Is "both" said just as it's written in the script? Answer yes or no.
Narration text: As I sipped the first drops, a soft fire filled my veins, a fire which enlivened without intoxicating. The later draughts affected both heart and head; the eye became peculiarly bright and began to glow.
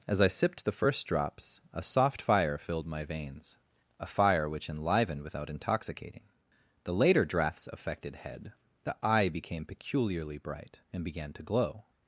no